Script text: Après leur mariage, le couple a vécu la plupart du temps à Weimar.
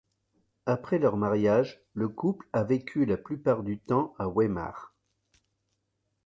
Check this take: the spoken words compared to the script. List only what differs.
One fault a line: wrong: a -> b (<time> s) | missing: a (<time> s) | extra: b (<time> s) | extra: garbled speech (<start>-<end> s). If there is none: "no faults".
no faults